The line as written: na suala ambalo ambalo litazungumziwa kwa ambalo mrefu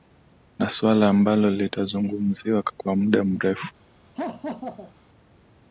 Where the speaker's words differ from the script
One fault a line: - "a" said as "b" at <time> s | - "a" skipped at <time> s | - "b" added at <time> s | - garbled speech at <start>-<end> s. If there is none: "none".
- "ambalo" skipped at 1.5 s
- "ambalo" said as "muda" at 3.0 s